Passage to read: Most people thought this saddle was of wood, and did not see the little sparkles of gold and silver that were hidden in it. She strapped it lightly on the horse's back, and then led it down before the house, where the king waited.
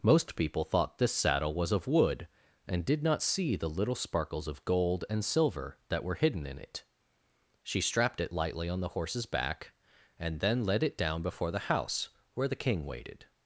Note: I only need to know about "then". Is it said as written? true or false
true